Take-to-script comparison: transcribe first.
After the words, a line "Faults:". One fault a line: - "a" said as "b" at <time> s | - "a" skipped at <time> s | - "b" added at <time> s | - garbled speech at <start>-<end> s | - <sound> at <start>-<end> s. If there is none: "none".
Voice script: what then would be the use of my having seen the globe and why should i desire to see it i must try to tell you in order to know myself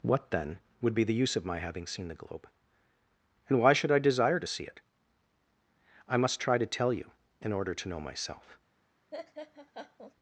what then would be the use of my having seen the globe and why should i desire to see it i must try to tell you in order to know myself
Faults:
- laugh at 9.1-10.1 s